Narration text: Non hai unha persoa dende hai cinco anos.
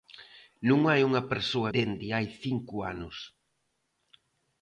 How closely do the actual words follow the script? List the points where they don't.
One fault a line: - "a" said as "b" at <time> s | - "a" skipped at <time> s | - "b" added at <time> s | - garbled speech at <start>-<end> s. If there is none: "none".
none